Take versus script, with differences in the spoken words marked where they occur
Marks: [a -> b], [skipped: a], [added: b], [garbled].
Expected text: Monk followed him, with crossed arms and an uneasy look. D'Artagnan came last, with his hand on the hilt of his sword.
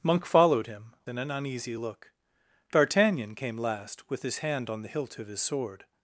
Monk followed him, [skipped: with crossed arms] and an uneasy look. D'Artagnan came last, with his hand on the hilt of his sword.